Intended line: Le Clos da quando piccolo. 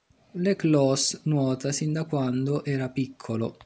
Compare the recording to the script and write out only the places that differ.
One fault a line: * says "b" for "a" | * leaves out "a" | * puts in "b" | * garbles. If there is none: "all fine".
* puts in "nuota sin"
* puts in "era"